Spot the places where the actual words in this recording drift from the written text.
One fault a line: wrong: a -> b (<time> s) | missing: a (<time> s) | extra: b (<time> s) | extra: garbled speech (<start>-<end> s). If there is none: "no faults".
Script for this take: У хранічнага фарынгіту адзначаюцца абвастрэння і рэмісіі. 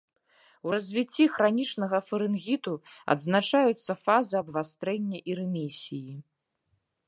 extra: развіцці (0.7 s)
extra: фазы (4.0 s)